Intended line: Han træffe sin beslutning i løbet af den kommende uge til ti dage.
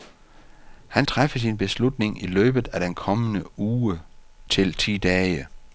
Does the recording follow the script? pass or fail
pass